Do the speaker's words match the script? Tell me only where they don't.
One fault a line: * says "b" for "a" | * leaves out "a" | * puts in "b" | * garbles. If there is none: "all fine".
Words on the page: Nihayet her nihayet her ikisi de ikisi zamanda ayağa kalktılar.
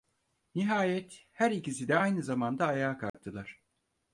* leaves out "nihayet her"
* says "aynı" for "ikisi"